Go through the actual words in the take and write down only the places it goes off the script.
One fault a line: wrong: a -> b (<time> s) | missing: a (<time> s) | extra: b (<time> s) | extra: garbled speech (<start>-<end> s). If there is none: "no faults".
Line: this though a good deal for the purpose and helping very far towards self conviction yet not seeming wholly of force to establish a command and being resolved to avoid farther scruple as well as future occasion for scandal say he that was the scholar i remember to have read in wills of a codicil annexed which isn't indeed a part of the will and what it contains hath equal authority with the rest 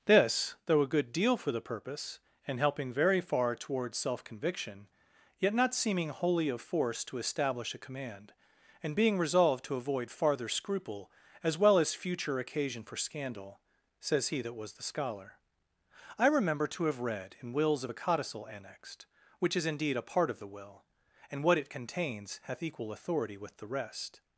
wrong: say -> says (14.0 s)
wrong: isn't -> is (19.6 s)